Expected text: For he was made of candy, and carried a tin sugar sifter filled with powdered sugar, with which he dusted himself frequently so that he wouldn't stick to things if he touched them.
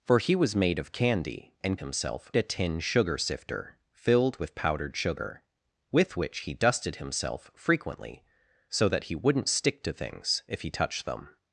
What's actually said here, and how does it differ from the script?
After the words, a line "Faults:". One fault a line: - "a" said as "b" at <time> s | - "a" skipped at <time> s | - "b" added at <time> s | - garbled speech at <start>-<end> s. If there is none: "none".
For he was made of candy, and himself a tin sugar sifter filled with powdered sugar, with which he dusted himself frequently so that he wouldn't stick to things if he touched them.
Faults:
- "carried" said as "himself" at 1.8 s